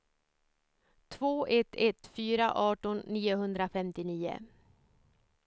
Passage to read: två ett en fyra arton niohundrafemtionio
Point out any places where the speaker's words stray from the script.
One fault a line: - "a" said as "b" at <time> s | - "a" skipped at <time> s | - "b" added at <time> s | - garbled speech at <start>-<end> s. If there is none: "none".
- "en" said as "ett" at 1.8 s